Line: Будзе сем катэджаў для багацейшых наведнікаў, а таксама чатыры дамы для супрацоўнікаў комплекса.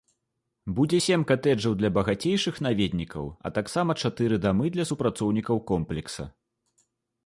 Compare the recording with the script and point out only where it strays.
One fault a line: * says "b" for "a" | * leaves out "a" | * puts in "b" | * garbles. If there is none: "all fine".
all fine